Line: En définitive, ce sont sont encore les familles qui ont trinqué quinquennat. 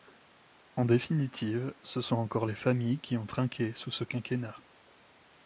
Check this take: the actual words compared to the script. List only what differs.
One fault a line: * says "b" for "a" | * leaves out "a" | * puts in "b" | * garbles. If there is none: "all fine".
* leaves out "sont"
* puts in "sous ce"